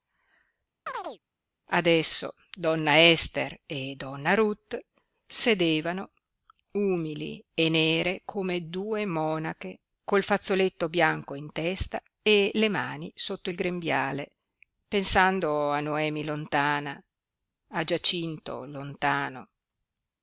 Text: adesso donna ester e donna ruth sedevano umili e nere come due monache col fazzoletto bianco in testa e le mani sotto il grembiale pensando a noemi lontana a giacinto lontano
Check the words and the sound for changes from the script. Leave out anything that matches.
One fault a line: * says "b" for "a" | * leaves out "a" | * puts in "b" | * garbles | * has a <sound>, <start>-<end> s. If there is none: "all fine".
* has a chirp, 0.9-1.2 s